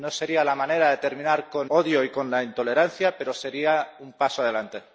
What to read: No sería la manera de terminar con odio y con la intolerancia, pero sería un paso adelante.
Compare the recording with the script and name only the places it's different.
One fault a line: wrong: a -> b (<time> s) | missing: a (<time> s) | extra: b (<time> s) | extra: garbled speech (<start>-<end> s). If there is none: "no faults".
no faults